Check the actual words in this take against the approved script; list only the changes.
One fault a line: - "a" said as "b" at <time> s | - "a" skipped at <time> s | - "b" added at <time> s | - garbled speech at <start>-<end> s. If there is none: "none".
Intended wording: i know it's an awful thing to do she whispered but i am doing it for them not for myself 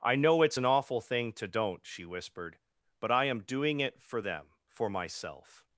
- "do" said as "don't" at 1.4 s
- "not" skipped at 4.5 s